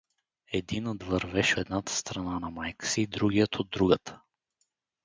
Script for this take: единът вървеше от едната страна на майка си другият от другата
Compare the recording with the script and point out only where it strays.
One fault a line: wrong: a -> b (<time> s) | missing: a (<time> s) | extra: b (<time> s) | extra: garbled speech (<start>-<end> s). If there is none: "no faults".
missing: от (1.6 s)